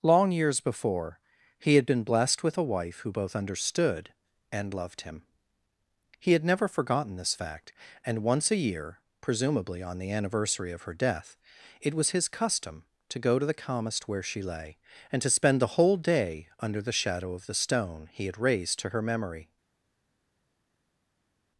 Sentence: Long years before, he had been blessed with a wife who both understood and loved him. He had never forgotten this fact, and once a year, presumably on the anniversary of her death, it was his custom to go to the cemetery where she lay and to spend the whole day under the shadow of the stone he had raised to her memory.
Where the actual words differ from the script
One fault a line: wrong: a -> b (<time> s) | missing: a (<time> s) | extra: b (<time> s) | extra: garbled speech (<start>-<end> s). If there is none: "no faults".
wrong: cemetery -> calmest (13.5 s)